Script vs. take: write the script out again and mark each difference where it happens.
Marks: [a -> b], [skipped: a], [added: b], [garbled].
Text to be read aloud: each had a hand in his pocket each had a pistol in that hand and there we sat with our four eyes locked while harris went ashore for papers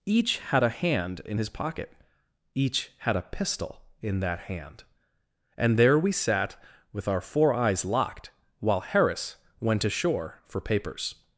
each had a hand in his pocket each had a pistol in that hand and there we sat with our four eyes locked while harris went ashore for papers